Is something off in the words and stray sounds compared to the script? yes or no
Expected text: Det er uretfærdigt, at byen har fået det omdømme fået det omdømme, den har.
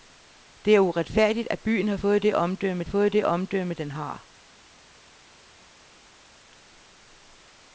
no